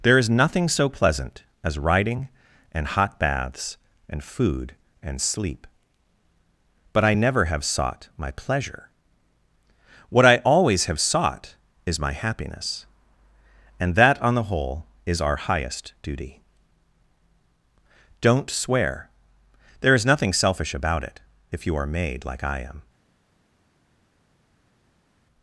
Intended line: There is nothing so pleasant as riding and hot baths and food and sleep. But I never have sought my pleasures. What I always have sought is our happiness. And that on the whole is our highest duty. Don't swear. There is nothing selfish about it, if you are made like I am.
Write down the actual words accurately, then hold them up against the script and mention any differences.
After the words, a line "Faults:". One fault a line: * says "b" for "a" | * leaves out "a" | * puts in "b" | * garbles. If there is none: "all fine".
There is nothing so pleasant as riding and hot baths and food and sleep. But I never have sought my pleasure. What I always have sought is my happiness. And that on the whole is our highest duty. Don't swear. There is nothing selfish about it, if you are made like I am.
Faults:
* says "pleasure" for "pleasures"
* says "my" for "our"